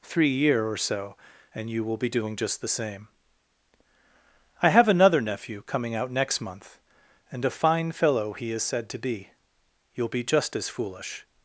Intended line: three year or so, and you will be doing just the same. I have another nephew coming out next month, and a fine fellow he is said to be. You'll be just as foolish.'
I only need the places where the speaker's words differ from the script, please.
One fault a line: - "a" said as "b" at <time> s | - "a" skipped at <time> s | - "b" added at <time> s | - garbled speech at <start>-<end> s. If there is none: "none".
none